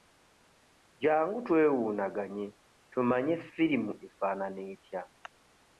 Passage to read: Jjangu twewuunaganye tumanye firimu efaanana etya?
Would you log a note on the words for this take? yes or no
no